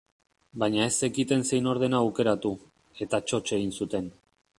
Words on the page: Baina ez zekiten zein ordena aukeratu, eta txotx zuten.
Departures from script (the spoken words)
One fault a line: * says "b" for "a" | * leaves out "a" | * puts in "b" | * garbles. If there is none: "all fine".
* puts in "egin"